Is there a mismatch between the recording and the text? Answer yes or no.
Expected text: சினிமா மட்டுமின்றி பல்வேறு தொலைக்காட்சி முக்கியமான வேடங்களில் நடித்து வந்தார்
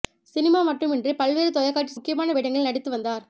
no